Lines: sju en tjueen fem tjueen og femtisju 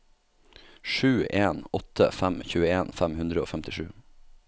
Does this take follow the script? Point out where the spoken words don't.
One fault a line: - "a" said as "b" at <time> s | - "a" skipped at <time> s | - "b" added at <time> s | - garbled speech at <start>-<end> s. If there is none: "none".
- "åtte fem" added at 1.7 s
- "tjueen" said as "hundre" at 3.2 s